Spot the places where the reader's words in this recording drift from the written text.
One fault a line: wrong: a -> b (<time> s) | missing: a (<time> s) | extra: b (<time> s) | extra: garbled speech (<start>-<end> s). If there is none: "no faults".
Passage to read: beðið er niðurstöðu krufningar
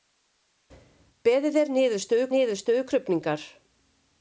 extra: niðurstöðu (2.3 s)